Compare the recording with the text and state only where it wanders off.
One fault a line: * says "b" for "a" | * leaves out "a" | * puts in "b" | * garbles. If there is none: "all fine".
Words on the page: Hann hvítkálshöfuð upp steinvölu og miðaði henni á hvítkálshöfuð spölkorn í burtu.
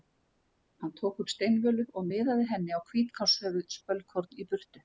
* says "tók" for "hvítkálshöfuð"